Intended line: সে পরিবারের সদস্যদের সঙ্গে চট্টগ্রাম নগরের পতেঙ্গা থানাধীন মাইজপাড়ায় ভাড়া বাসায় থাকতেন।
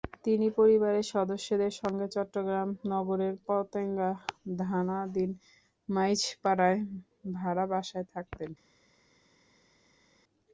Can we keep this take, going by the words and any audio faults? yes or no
no